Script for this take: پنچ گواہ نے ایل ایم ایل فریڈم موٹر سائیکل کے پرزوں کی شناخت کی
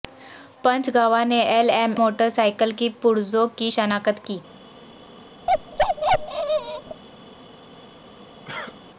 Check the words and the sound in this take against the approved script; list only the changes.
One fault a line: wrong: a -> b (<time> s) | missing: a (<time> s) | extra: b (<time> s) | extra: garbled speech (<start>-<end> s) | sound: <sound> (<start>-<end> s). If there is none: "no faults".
missing: ایل فریڈم (1.9 s)
sound: bark (5.5-7.0 s)
sound: cough (8.4-8.8 s)